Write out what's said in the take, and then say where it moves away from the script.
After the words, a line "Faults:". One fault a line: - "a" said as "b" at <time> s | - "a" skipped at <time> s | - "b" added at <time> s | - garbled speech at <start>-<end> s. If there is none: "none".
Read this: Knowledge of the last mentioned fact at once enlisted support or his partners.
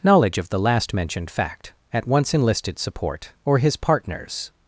Knowledge of the last mentioned fact at once enlisted support or his partners.
Faults:
none